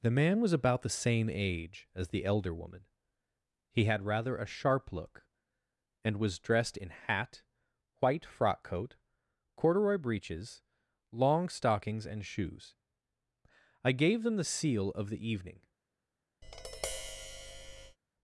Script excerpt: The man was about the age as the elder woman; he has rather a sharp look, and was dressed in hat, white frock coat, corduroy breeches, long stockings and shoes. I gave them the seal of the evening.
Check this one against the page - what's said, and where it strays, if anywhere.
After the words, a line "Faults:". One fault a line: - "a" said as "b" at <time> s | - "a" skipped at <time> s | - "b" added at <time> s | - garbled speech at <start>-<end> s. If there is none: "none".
The man was about the same age as the elder woman; he had rather a sharp look, and was dressed in hat, white frock coat, corduroy breeches, long stockings and shoes. I gave them the seal of the evening.
Faults:
- "same" added at 0.9 s
- "has" said as "had" at 3.9 s